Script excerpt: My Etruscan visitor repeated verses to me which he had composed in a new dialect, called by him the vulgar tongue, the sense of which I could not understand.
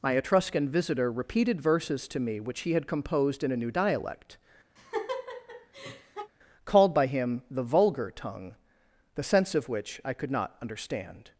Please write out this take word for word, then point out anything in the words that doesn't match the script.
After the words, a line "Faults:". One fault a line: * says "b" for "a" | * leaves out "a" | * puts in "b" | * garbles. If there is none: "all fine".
My Etruscan visitor repeated verses to me which he had composed in a new dialect, called by him the vulgar tongue, the sense of which I could not understand.
Faults:
all fine